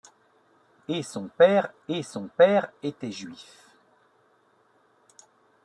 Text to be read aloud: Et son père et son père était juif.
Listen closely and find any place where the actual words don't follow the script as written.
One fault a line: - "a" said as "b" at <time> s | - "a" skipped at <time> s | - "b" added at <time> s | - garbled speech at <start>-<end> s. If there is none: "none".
none